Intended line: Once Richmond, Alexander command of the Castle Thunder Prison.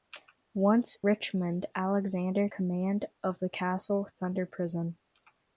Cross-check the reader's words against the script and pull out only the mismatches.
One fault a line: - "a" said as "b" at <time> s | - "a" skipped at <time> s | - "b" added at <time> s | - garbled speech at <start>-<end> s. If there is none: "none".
none